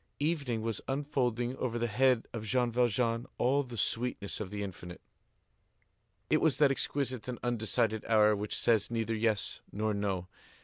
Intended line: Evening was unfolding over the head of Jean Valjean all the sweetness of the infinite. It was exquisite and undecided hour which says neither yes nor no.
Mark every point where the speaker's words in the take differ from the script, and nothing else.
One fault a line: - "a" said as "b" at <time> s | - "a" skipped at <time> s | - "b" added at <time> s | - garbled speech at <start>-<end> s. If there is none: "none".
- "that" added at 6.6 s